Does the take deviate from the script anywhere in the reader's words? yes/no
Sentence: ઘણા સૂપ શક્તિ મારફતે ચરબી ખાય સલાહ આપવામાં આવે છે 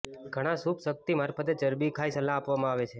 no